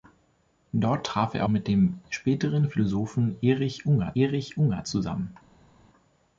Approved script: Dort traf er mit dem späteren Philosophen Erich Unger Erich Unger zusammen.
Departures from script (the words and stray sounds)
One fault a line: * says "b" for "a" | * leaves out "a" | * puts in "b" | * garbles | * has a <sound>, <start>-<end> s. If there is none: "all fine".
all fine